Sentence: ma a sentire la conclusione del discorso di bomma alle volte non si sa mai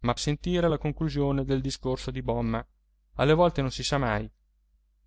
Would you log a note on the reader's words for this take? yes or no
no